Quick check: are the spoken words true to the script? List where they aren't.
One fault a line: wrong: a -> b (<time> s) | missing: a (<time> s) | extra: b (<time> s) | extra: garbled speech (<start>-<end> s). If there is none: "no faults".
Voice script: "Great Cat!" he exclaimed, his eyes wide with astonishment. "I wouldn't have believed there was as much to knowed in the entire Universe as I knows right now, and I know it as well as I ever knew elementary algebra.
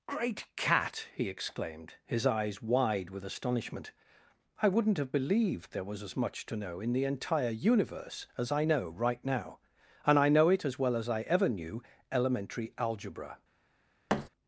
wrong: knowed -> know (6.6 s)
wrong: knows -> know (8.6 s)